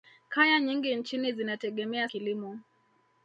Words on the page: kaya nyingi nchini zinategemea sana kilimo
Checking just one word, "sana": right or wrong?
wrong